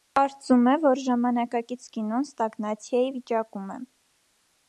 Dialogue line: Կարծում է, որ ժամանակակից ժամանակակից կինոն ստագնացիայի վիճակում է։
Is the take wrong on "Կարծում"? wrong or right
right